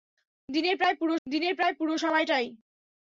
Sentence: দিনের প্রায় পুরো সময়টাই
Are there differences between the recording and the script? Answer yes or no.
yes